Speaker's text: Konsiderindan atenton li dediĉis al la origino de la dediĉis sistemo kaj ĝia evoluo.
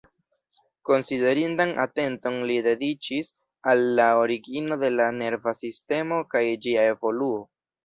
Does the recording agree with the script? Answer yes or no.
no